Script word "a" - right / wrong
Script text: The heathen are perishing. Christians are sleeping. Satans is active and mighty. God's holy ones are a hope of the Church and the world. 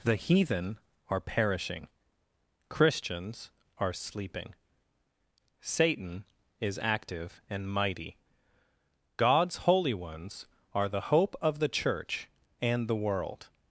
wrong